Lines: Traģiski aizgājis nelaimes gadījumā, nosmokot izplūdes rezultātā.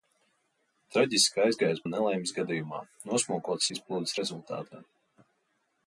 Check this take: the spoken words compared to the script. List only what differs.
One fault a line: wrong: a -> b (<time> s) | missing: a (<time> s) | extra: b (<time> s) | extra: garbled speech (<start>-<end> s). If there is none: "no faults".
no faults